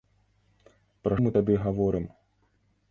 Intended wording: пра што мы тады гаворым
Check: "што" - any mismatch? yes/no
yes